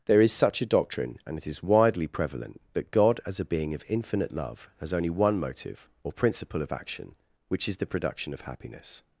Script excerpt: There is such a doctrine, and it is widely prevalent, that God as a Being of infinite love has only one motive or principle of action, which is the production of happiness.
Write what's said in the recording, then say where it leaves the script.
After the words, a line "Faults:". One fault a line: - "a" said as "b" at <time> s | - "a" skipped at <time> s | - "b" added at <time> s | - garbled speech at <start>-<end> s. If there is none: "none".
There is such a doctrine, and it is widely prevalent, that God as a Being of infinite love has only one motive or principle of action, which is the production of happiness.
Faults:
none